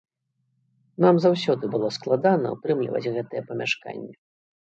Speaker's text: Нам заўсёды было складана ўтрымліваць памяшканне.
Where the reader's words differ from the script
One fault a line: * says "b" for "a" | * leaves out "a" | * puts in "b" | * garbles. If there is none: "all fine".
* puts in "гэтае"